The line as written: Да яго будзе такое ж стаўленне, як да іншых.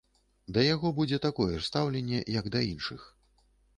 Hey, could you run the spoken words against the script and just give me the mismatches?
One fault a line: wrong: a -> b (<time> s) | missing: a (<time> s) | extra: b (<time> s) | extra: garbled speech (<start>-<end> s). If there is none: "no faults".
no faults